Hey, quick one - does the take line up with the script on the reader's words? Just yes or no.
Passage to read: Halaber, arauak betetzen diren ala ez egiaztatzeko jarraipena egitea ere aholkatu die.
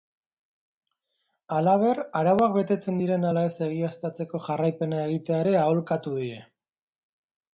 yes